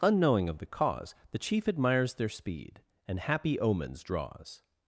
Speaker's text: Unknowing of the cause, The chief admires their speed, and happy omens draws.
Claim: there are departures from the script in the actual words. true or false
false